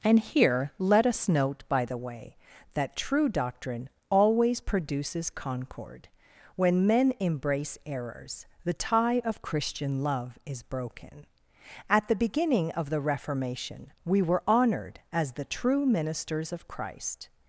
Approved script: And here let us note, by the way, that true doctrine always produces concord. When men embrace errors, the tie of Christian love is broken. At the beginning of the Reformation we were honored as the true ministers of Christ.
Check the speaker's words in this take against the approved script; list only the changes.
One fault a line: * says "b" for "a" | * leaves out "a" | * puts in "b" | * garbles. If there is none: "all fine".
all fine